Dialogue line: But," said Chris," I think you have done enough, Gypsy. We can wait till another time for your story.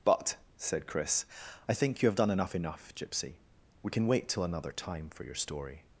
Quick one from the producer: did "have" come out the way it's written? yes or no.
yes